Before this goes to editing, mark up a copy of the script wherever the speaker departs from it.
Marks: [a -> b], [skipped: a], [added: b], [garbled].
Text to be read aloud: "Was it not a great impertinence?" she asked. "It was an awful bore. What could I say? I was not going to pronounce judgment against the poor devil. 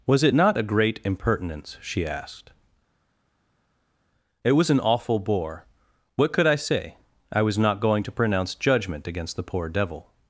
"Was it not a great impertinence?" she asked. "It was an awful bore. What could I say? I was not going to pronounce judgment against the poor devil.